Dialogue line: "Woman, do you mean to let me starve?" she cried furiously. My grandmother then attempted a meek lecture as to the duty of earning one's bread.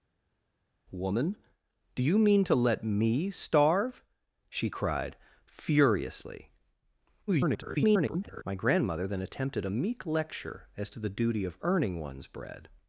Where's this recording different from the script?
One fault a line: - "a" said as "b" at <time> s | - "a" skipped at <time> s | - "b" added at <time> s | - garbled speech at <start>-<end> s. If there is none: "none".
- garbled speech at 7.3-8.4 s